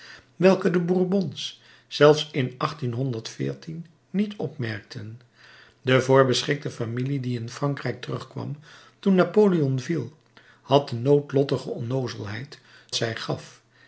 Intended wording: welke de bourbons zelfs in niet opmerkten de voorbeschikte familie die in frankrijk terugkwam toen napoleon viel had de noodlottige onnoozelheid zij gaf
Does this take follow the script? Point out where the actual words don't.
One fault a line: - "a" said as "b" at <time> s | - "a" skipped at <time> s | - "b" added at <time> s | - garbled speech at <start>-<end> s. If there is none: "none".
none